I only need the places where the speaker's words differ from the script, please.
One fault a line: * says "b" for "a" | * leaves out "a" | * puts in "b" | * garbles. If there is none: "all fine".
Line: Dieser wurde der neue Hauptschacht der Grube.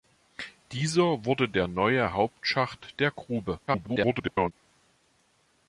* garbles